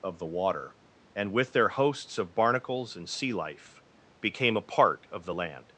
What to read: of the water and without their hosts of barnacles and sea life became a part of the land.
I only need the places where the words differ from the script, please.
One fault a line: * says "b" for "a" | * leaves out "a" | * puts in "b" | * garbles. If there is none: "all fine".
* says "with" for "without"